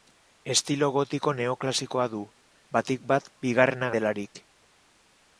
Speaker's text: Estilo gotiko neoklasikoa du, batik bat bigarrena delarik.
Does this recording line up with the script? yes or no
yes